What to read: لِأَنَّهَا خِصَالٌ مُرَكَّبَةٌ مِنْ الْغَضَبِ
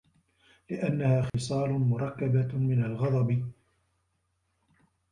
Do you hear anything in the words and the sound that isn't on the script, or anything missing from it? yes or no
yes